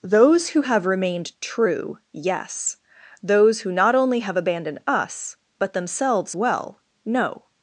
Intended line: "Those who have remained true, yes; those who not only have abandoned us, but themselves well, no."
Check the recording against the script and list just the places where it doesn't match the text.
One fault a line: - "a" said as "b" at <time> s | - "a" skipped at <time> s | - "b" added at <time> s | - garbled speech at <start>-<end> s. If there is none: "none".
none